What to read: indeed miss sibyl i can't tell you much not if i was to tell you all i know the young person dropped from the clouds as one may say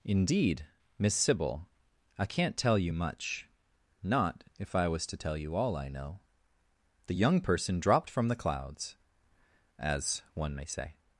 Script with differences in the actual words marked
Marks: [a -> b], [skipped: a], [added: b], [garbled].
indeed miss sibyl i can't tell you much not if i was to tell you all i know the young person dropped from the clouds as one may say